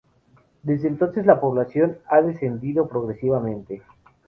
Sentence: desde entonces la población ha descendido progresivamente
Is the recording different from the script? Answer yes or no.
no